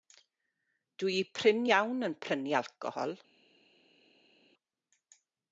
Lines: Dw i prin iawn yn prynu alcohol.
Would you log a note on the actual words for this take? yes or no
no